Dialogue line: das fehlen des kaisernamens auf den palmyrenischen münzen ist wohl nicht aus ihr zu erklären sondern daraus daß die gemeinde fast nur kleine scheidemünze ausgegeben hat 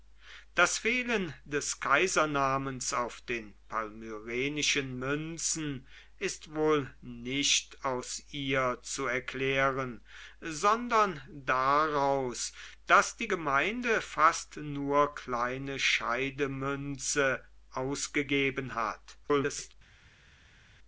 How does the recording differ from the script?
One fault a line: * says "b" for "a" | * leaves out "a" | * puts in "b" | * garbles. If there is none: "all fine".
* garbles